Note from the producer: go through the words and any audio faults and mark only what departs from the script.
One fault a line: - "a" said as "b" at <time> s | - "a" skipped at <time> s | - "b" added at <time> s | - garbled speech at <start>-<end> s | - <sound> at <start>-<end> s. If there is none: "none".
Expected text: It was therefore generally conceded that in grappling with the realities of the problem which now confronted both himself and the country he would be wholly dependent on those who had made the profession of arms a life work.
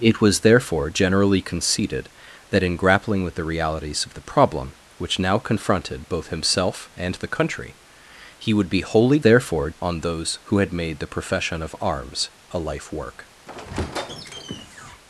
- "dependent" said as "therefore" at 9.2 s
- squeak at 13.5-15.0 s